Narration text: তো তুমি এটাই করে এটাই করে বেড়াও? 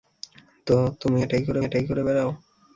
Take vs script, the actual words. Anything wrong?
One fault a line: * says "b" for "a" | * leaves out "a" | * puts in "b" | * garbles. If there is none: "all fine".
all fine